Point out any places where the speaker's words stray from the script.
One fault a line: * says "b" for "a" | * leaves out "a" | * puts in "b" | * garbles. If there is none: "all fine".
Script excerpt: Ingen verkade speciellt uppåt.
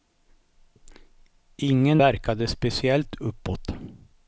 all fine